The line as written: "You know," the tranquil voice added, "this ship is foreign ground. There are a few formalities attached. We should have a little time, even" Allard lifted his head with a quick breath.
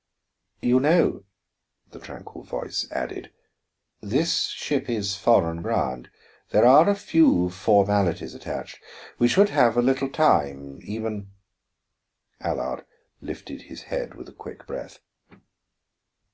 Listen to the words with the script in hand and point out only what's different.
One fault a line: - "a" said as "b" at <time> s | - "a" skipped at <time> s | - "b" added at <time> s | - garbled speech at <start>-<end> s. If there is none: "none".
none